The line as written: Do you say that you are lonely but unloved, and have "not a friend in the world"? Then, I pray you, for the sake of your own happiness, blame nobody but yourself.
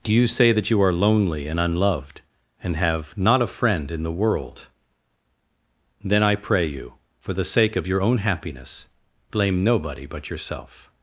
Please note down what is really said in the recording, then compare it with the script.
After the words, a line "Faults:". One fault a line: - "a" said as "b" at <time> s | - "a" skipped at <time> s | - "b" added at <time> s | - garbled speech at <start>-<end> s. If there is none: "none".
Do you say that you are lonely and unloved, and have "not a friend in the world"? Then, I pray you, for the sake of your own happiness, blame nobody but yourself.
Faults:
- "but" said as "and" at 1.5 s